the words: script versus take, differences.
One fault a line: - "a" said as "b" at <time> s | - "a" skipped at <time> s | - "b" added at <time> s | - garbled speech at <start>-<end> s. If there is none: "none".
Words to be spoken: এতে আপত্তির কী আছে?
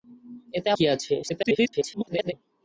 - "আপত্তির" skipped at 0.7 s
- garbled speech at 1.2-2.3 s